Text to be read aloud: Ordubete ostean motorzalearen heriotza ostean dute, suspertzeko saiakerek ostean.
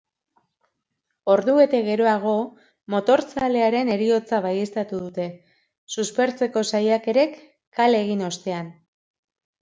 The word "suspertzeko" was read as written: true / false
true